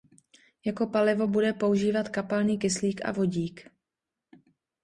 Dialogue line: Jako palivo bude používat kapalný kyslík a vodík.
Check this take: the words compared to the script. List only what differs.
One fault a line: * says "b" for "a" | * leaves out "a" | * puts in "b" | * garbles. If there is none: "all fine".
all fine